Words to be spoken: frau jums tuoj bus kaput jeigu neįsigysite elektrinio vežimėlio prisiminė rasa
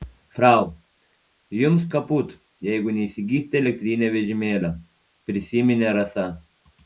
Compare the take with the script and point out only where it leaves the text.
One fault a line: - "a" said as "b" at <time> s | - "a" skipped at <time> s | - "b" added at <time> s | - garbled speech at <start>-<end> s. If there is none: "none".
- "tuoj bus" skipped at 1.9 s